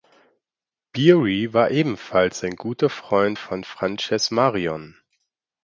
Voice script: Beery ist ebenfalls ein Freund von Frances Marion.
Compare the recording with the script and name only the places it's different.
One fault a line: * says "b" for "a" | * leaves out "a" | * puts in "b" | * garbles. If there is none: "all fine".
* says "war" for "ist"
* puts in "guter"